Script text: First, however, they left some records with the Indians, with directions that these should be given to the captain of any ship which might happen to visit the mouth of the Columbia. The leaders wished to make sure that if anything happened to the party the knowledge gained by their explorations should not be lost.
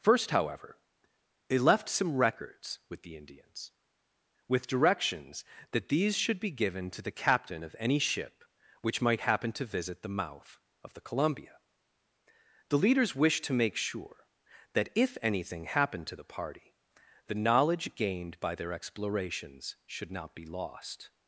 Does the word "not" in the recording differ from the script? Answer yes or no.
no